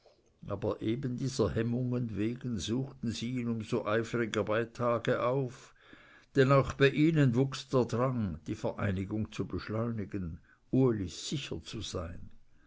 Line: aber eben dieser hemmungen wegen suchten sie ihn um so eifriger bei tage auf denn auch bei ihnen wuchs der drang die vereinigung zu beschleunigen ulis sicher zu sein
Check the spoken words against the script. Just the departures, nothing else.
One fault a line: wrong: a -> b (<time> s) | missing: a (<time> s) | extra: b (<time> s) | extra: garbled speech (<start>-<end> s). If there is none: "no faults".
no faults